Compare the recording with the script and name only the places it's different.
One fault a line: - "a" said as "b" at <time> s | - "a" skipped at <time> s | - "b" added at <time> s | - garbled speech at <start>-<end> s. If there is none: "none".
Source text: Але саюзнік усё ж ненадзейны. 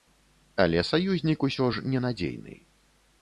none